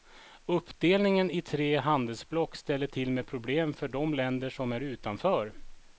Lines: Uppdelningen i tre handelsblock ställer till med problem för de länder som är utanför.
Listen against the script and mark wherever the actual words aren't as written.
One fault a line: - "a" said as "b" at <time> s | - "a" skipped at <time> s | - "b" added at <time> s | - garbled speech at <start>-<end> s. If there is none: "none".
none